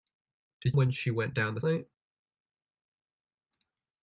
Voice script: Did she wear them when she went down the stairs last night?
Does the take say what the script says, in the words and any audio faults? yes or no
no